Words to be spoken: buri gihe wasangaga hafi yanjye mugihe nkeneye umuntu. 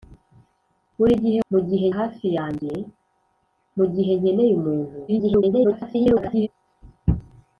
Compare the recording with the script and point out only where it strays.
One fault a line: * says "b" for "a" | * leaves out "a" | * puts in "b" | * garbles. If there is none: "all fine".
* says "mugihe" for "wasangaga"
* garbles